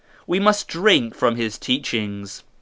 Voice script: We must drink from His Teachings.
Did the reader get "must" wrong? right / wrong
right